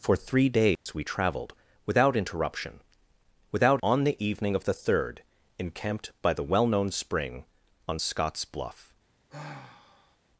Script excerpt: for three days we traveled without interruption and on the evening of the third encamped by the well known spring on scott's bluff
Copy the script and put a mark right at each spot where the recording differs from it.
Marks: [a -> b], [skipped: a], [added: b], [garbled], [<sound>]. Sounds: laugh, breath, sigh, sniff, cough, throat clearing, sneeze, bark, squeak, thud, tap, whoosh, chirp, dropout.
for three days [dropout] we traveled without interruption [and -> without] on the evening of the third encamped by the well known spring on scott's bluff [sigh]